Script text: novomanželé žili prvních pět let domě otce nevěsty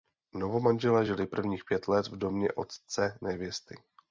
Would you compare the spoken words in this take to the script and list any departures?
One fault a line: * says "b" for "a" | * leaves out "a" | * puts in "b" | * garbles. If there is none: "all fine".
* puts in "v"